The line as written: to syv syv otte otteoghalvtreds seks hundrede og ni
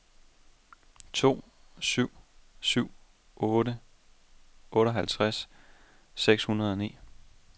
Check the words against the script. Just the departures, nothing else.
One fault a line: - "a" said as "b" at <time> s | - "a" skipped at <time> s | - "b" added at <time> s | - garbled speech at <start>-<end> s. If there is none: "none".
none